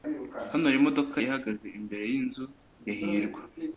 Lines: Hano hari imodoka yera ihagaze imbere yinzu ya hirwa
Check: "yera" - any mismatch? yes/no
yes